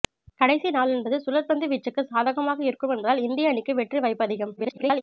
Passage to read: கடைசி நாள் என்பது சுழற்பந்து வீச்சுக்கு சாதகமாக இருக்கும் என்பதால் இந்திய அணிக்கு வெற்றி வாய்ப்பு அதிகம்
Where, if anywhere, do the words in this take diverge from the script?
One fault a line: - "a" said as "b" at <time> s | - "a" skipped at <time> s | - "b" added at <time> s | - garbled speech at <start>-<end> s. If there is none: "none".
- garbled speech at 4.6-5.0 s